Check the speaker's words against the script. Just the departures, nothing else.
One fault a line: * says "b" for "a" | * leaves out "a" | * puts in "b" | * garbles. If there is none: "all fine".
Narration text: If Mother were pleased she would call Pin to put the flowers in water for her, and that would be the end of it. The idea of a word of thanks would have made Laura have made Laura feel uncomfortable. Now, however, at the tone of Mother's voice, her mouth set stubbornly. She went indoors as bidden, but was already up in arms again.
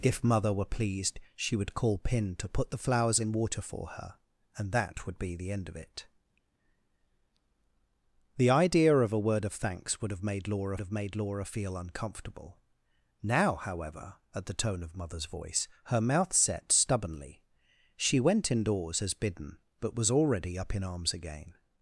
all fine